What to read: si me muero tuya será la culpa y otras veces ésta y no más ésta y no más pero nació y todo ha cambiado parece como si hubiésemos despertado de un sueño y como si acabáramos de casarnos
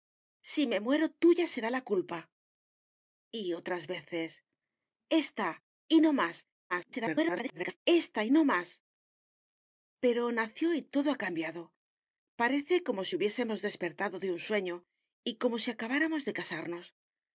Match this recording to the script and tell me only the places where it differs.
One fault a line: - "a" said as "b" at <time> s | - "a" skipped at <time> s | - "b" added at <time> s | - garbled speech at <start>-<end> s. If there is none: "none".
- garbled speech at 6.7-7.8 s